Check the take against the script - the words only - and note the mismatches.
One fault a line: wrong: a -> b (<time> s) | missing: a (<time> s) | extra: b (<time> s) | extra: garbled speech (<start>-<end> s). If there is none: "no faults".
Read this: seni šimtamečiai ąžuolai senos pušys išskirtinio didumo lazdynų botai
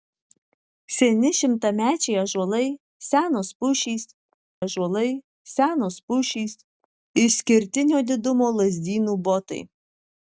extra: ąžuolai senos pušys (4.6 s)